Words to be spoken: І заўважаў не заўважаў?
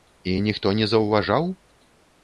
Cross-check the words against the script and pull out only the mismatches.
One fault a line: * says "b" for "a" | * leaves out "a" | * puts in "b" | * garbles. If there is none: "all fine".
* says "ніхто" for "заўважаў"